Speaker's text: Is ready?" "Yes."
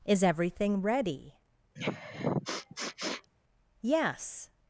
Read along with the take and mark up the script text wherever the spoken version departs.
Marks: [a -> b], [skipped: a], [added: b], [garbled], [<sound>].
Is [added: everything] ready?" [sniff] "Yes."